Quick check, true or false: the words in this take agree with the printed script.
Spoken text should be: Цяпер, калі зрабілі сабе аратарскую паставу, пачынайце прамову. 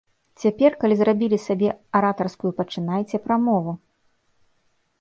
false